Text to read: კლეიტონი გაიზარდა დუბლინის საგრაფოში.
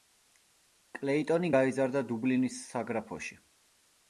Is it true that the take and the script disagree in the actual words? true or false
false